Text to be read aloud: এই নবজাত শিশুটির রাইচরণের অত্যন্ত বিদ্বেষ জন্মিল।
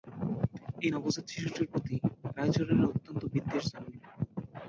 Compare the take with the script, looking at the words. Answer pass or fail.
fail